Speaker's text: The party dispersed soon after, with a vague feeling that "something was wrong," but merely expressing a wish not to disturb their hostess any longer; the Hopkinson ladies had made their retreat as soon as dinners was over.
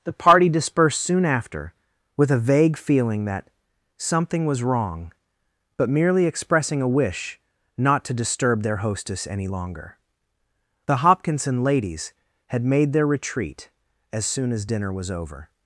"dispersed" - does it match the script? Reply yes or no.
yes